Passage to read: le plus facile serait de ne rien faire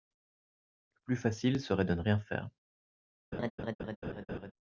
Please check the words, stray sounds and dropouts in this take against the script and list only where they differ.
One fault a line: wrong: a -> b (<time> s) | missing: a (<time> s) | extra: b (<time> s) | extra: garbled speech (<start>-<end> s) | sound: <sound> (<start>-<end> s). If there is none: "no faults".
sound: laugh (3.3-4.5 s)